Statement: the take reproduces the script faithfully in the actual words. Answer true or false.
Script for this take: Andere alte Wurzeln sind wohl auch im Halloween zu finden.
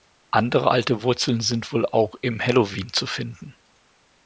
true